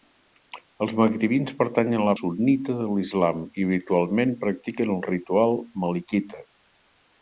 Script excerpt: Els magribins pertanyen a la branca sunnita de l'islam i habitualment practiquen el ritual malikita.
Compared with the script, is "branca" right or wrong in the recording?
wrong